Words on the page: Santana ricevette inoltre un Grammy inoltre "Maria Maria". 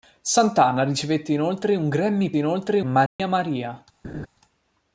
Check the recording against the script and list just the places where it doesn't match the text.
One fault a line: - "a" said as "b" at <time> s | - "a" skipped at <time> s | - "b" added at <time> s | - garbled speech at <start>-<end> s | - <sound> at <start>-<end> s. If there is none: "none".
- dropout at 3.1-3.2 s
- laugh at 4.0-4.3 s